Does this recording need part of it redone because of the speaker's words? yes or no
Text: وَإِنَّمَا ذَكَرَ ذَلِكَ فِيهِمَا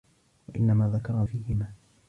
yes